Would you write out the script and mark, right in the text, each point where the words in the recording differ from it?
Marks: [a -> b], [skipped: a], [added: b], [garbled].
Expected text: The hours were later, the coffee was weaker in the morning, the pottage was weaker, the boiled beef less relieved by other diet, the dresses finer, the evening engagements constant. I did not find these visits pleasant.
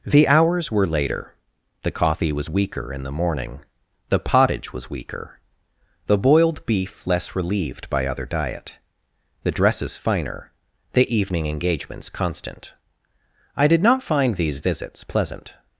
The hours were later, the coffee was weaker in the morning, the pottage was weaker, the boiled beef less relieved by other diet, the dresses finer, the evening engagements constant. I did not find these visits pleasant.